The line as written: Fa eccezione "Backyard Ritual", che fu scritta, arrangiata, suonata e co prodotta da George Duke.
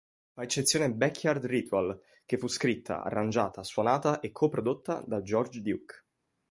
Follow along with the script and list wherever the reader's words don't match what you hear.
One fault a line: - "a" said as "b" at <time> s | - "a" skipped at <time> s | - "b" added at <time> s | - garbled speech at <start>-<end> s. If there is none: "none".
none